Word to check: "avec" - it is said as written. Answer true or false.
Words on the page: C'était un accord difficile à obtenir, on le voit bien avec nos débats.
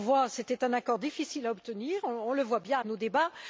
false